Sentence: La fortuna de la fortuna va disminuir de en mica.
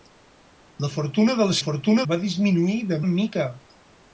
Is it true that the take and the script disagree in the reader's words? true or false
false